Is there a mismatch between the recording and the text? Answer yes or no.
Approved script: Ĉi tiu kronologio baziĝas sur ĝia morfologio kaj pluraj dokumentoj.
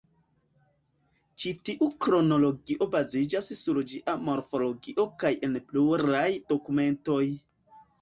yes